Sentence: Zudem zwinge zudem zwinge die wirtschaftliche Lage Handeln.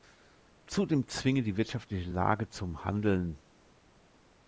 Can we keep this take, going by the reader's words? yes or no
no